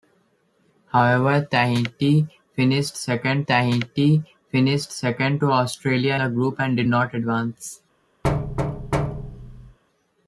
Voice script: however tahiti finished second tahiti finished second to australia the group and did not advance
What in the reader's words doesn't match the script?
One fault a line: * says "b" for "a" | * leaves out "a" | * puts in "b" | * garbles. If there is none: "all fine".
all fine